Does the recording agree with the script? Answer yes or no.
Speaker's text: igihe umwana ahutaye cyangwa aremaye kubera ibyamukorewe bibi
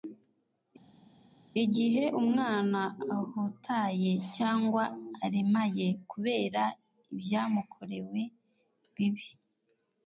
yes